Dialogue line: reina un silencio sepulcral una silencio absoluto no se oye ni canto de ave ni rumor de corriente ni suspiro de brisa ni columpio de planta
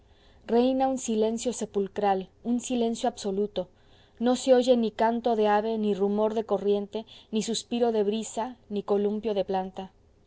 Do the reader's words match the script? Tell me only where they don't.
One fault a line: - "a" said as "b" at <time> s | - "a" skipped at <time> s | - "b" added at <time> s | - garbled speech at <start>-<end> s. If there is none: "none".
- "una" said as "un" at 2.4 s